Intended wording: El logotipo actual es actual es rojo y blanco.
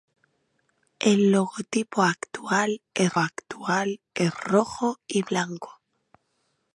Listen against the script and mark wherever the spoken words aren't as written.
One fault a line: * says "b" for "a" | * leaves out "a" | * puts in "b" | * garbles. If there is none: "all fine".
all fine